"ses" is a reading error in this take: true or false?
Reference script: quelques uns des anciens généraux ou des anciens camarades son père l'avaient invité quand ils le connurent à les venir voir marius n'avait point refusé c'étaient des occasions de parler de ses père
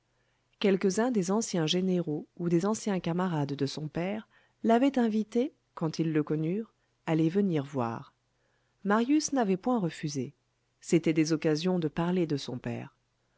true